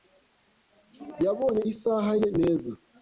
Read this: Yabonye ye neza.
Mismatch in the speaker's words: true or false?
true